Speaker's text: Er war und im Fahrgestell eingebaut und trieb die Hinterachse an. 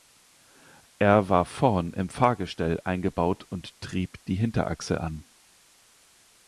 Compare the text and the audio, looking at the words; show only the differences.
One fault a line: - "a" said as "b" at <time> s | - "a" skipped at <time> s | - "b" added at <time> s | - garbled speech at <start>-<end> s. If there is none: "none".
- "und" said as "vorn" at 1.4 s